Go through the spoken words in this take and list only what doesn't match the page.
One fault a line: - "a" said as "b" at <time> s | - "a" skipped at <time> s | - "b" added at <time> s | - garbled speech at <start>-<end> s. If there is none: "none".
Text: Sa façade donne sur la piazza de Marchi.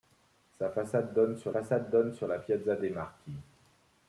- "façade donne sur" added at 1.5 s